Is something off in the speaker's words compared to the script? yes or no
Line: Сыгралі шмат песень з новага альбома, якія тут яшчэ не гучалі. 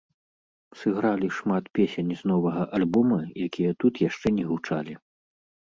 no